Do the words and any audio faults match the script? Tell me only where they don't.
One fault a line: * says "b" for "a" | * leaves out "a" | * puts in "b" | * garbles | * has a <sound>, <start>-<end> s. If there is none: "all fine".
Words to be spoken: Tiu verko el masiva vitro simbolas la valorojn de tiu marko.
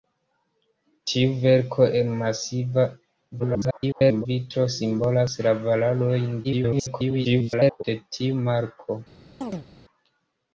* garbles
* garbles
* has a chirp, 9.4-9.7 s